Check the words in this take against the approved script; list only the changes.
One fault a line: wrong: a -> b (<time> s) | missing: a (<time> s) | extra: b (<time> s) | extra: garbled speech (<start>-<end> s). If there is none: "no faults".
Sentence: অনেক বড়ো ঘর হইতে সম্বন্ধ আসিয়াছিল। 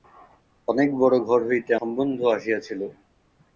no faults